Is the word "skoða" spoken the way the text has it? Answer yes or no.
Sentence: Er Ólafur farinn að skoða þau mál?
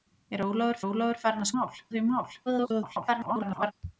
no